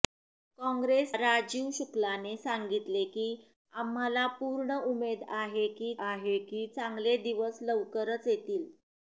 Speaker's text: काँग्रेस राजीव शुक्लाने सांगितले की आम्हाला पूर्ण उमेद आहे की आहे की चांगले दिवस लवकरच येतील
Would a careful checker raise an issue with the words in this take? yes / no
no